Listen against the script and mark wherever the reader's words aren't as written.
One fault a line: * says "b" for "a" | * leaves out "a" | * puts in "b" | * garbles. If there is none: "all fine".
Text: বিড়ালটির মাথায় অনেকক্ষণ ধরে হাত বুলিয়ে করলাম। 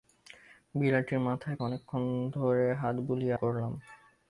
all fine